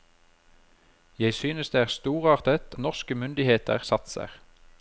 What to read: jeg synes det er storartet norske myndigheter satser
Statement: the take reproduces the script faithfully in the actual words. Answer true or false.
true